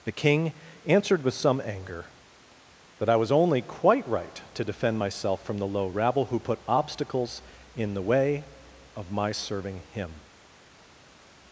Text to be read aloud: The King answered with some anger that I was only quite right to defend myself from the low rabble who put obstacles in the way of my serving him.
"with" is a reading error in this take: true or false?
false